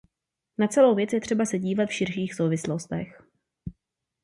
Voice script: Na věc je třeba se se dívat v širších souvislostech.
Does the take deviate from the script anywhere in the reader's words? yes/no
yes